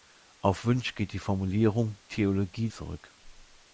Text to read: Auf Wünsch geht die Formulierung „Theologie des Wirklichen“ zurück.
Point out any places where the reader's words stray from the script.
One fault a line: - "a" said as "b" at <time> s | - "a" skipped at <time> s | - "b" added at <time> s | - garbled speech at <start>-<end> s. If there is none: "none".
- "des Wirklichen" skipped at 2.7 s